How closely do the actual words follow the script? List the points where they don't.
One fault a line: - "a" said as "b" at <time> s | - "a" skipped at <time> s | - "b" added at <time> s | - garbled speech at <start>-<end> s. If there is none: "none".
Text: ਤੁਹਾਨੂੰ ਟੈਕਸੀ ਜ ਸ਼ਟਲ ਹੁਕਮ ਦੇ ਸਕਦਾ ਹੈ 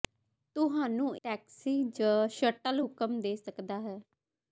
none